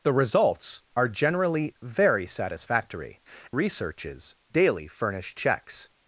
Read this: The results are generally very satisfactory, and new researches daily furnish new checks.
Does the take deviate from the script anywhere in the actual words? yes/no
yes